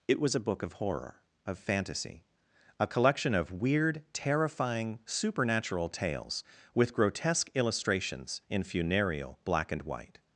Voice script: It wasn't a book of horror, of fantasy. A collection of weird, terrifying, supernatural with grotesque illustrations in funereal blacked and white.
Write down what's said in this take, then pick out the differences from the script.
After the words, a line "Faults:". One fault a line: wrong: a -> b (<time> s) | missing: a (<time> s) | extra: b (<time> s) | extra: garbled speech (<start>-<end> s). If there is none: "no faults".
It was a book of horror, of fantasy. A collection of weird, terrifying, supernatural tales with grotesque illustrations in funereal black and white.
Faults:
wrong: wasn't -> was (0.2 s)
extra: tales (5.9 s)
wrong: blacked -> black (9.4 s)